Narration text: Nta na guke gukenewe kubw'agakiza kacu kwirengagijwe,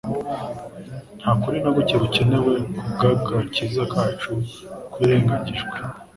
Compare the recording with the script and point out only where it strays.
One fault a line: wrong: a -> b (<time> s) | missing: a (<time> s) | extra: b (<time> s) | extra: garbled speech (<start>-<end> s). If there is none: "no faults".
extra: kuri (1.4 s)